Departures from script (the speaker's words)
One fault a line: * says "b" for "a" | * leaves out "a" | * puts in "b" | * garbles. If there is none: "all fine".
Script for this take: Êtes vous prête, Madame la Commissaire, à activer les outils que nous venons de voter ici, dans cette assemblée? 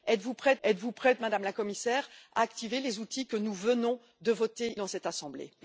* puts in "êtes vous prête"
* leaves out "ici"